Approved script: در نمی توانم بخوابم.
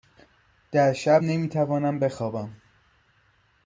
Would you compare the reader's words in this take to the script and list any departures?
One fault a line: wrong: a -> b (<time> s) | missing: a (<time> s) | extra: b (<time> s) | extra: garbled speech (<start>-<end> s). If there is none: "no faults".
extra: شب (0.9 s)